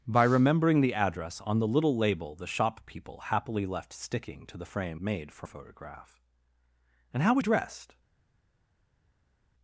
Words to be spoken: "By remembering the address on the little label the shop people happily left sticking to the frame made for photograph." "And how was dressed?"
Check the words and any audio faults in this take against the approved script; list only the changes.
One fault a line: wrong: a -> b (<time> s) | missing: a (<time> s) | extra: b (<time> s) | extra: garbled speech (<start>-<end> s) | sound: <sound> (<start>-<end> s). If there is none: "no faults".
no faults